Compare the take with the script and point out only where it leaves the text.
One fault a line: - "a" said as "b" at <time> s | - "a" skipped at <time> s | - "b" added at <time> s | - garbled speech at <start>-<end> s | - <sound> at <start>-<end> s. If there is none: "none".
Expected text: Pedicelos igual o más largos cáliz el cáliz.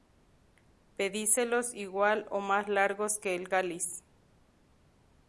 - "cáliz" said as "que" at 3.2 s